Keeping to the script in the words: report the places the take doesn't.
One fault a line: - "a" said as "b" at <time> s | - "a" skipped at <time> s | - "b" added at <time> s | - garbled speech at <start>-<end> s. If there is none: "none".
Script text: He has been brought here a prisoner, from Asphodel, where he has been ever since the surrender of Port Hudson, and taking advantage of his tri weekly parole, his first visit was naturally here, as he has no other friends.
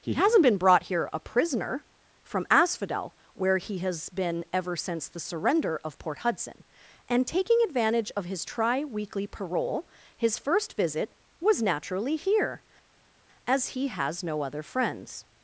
- "has" said as "hasn't" at 0.1 s